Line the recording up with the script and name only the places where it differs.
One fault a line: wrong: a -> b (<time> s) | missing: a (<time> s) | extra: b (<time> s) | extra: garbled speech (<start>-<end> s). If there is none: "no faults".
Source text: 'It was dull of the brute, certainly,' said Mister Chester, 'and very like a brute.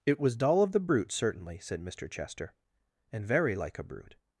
no faults